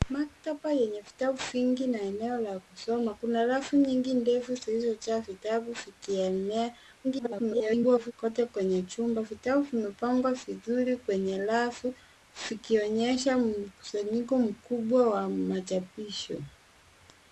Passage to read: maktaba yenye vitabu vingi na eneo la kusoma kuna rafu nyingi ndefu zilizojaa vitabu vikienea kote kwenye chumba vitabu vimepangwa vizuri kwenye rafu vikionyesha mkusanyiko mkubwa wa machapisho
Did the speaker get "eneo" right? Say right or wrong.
right